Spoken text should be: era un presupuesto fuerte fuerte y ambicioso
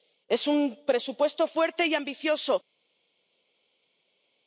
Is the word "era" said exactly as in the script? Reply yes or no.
no